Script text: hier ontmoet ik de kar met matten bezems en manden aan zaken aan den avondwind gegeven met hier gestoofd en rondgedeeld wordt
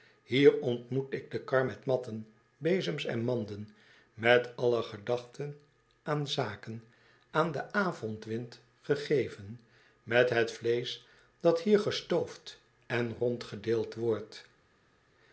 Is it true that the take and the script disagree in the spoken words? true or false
true